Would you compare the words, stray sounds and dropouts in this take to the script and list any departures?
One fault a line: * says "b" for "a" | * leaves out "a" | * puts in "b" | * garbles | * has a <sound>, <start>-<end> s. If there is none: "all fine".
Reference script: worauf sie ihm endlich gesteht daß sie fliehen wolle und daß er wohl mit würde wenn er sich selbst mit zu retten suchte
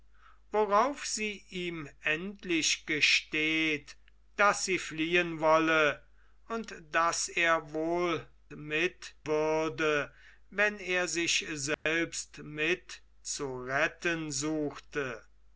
* has a dropout, 11.7-11.9 s